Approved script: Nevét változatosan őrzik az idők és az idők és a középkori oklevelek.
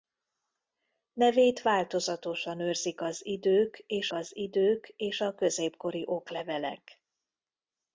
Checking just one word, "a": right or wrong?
right